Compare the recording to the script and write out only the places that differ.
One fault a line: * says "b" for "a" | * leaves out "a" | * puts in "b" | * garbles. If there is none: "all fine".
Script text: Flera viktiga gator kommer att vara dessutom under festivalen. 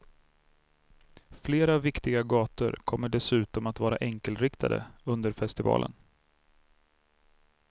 * puts in "dessutom"
* says "enkelriktade" for "dessutom"